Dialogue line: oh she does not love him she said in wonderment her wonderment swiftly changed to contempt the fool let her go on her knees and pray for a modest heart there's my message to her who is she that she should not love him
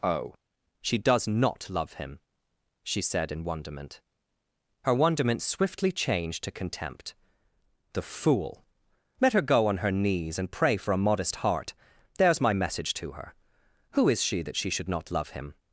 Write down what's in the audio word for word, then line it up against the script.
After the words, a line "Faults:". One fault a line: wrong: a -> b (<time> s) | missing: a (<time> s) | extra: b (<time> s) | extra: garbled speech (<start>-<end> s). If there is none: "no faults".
oh she does not love him she said in wonderment her wonderment swiftly changed to contempt the fool let her go on her knees and pray for a modest heart there's my message to her who is she that she should not love him
Faults:
no faults